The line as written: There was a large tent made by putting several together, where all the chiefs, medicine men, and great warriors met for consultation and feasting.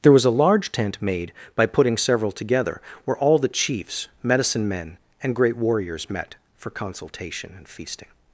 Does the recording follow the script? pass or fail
pass